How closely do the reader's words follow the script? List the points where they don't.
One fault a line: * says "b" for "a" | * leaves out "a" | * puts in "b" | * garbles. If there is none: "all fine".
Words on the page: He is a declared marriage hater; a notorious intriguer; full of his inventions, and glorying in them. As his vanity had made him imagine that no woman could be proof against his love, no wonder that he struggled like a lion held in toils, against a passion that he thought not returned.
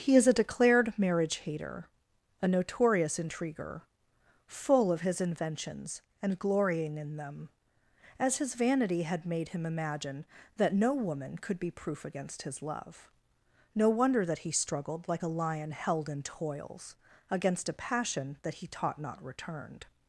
* says "taught" for "thought"